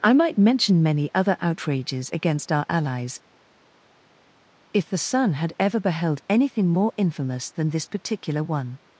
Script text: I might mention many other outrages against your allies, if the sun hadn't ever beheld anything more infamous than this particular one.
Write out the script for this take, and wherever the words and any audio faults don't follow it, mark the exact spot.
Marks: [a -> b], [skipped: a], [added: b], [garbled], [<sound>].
I might mention many other outrages against [your -> our] allies, if the sun [hadn't -> had] ever beheld anything more infamous than this particular one.